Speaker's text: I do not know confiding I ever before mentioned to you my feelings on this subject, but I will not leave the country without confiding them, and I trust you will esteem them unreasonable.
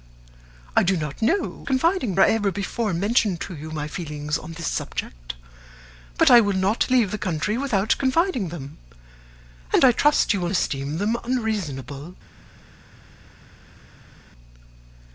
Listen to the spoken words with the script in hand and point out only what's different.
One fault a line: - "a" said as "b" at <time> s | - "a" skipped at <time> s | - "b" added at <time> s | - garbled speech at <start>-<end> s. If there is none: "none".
none